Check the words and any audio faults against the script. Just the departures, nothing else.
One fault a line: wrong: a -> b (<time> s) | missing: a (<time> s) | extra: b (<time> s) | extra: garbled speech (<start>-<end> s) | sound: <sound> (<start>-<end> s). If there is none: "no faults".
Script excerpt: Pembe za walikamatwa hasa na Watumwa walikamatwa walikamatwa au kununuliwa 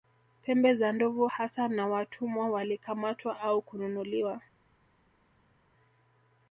wrong: walikamatwa -> ndovu (0.9 s)
missing: walikamatwa (3.4 s)